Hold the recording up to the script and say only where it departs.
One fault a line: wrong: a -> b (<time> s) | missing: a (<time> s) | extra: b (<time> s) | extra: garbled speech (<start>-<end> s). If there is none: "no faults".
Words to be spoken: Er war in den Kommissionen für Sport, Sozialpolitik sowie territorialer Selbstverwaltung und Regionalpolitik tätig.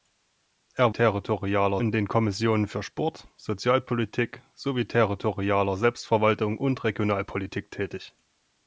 wrong: war -> territorialer (0.9 s)